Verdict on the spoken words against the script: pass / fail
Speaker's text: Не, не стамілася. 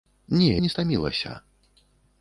pass